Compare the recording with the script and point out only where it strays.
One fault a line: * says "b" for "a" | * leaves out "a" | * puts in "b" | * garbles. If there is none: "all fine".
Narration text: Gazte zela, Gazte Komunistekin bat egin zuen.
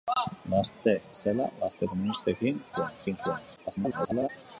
* says "zuen" for "bat"
* garbles